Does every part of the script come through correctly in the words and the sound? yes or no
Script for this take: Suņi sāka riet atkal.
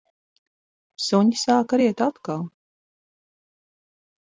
yes